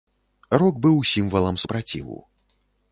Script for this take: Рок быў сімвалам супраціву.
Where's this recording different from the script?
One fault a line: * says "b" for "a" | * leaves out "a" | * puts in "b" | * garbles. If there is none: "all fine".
all fine